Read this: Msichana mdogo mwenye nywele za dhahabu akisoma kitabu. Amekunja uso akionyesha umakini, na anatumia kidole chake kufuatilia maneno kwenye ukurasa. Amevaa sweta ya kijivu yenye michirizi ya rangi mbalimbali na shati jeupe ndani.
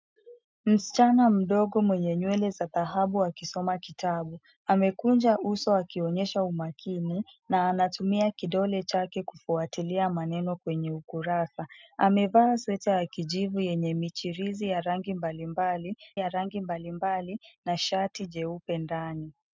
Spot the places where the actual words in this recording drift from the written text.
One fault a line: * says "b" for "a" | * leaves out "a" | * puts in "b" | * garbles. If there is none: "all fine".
* puts in "ya rangi mbalimbali"